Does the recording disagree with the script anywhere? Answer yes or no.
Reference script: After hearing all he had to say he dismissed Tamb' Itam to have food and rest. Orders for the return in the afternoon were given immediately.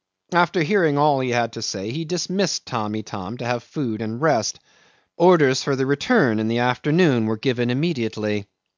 no